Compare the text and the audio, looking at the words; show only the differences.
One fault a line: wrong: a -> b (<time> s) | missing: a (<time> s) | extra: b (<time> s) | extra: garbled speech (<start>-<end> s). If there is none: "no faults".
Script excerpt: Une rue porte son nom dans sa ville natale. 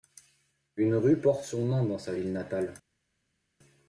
no faults